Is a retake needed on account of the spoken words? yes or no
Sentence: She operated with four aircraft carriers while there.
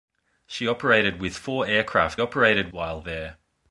yes